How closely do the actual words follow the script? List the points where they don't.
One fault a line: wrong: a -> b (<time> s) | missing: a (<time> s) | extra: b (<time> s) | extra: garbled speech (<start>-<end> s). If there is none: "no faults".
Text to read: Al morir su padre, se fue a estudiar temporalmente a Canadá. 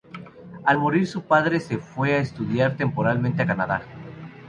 no faults